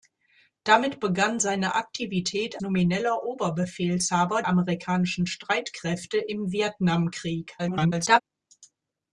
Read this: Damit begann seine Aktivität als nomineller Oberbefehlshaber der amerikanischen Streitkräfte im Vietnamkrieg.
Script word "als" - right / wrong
wrong